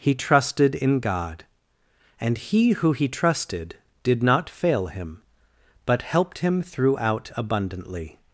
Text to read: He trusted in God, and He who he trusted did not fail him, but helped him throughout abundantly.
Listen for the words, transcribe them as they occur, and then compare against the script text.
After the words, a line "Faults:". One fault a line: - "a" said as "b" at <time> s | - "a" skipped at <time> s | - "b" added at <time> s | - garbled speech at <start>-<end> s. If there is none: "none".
He trusted in God, and He who he trusted did not fail him, but helped him throughout abundantly.
Faults:
none